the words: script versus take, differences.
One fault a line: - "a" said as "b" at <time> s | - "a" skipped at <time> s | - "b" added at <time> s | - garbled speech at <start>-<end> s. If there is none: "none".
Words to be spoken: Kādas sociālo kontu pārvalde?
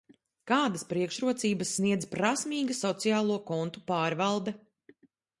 - "priekšrocības sniedz prasmīga" added at 0.9 s